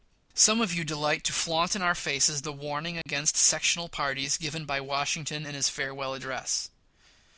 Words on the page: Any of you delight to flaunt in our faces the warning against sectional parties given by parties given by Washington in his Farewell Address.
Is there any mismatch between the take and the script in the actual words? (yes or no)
yes